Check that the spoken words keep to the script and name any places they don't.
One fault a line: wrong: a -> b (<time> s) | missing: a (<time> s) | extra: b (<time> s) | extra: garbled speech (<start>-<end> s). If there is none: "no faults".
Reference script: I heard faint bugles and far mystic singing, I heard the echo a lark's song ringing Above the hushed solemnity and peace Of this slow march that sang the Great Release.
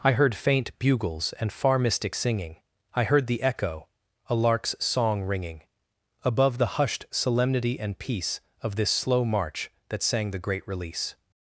no faults